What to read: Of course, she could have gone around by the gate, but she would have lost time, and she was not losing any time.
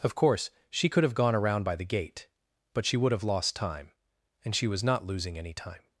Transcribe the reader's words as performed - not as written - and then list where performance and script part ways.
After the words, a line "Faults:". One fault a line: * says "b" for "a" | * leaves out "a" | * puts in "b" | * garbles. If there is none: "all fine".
Of course, she could have gone around by the gate, but she would have lost time, and she was not losing any time.
Faults:
all fine